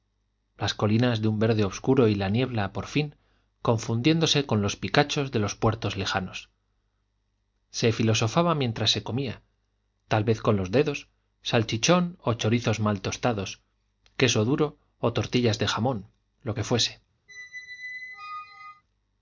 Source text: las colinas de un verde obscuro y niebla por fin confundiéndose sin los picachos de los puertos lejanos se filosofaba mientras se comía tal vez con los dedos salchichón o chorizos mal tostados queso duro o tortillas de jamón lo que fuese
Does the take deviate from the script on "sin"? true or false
true